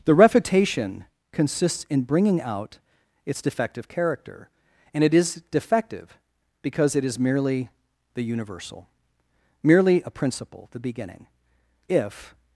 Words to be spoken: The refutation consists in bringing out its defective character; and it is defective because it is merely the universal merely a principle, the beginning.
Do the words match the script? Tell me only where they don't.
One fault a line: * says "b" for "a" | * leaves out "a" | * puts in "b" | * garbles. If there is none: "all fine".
* puts in "If"